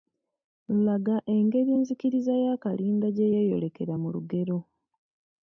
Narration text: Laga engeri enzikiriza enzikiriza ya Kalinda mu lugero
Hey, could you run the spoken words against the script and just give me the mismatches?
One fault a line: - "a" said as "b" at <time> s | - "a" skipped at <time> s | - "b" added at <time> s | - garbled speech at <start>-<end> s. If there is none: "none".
- "enzikiriza" skipped at 2.3 s
- "gye yeeyolekera" added at 3.1 s